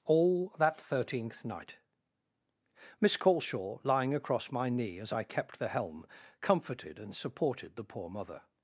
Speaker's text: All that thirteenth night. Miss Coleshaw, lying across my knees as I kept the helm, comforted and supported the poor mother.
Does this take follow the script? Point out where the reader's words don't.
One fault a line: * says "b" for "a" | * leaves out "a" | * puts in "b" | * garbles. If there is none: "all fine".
* says "knee" for "knees"